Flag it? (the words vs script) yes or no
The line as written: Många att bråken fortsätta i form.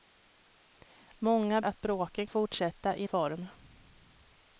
no